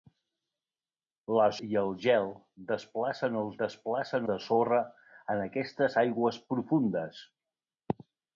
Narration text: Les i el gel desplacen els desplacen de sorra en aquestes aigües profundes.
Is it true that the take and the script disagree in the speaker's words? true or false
false